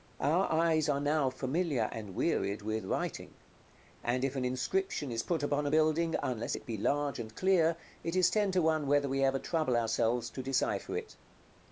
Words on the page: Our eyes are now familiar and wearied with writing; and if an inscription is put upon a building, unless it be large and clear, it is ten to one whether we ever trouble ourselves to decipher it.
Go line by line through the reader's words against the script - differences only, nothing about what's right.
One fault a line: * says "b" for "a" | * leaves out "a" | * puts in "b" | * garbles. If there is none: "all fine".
all fine